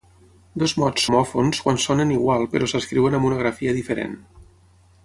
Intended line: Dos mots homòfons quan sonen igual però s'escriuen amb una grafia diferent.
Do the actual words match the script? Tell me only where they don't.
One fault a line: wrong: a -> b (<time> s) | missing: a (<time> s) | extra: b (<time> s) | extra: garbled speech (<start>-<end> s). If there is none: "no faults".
no faults